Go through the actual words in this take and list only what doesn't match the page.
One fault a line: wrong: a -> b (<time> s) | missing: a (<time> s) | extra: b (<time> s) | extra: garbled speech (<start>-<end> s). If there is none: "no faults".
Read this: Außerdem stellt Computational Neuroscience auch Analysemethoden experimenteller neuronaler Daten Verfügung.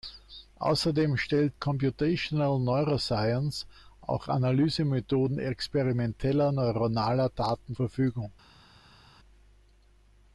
no faults